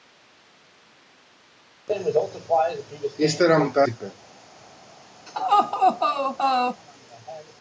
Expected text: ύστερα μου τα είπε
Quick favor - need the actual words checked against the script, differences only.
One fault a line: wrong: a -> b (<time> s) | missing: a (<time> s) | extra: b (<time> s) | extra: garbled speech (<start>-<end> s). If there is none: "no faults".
no faults